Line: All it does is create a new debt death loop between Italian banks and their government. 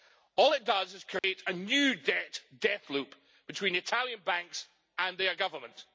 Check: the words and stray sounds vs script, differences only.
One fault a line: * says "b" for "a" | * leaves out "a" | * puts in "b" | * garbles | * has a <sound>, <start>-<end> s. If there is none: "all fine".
* has a dropout, 1.2-1.2 s